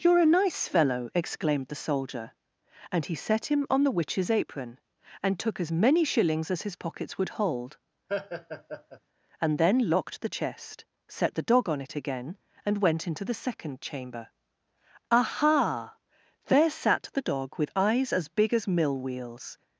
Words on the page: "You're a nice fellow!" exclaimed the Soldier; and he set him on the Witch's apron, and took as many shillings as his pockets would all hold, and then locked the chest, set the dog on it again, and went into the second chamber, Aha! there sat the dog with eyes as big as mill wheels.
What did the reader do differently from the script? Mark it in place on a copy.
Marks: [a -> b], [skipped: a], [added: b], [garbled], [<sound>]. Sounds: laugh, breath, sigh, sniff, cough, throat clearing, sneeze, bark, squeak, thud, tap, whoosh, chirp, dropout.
"You're a nice fellow!" exclaimed the Soldier; and he set him on the Witch's apron, and took as many shillings as his pockets would [skipped: all] hold, [laugh] and then locked the chest, set the dog on it again, and went into the second chamber, Aha! there sat the dog with eyes as big as mill wheels.